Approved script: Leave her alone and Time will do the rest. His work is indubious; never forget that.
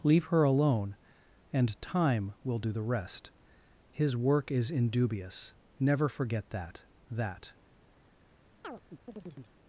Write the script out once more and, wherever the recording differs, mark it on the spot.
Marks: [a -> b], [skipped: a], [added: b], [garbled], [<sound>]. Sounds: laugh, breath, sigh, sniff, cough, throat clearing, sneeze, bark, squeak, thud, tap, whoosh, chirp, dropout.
Leave her alone and Time will do the rest. His work is indubious; never forget that. [added: that] [chirp]